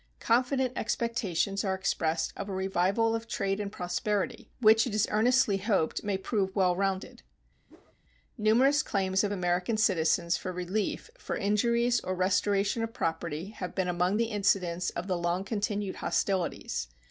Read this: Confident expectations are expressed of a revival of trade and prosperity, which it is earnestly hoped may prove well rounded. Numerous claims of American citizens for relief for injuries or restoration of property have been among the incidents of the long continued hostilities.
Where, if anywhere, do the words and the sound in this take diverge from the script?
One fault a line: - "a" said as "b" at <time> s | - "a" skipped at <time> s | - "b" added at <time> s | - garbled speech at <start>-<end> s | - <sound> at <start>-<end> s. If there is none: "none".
- whoosh at 7.7-8.0 s